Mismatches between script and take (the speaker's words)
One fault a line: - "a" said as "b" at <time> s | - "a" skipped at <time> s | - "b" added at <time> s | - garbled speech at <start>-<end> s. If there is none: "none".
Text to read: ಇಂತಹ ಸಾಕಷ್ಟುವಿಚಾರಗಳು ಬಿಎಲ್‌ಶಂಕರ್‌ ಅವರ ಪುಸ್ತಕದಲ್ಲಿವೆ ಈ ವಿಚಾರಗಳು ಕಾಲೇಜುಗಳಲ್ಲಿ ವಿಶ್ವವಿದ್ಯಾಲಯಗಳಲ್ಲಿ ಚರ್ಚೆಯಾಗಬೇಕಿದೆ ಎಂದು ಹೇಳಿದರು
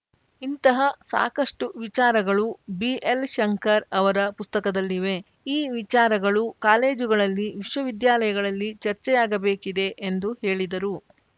none